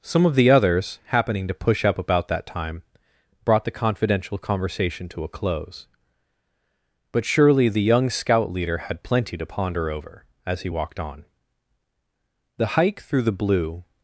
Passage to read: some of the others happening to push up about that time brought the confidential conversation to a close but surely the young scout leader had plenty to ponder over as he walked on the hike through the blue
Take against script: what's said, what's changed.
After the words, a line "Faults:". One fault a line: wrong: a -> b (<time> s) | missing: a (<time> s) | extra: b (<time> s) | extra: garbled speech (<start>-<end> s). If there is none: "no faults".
some of the others happening to push up about that time brought the confidential conversation to a close but surely the young scout leader had plenty to ponder over as he walked on the hike through the blue
Faults:
no faults